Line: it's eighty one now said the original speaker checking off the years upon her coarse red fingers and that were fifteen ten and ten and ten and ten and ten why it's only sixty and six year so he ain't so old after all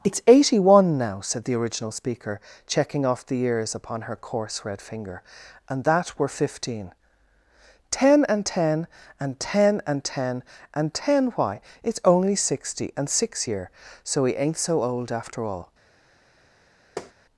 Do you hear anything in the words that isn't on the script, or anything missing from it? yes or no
yes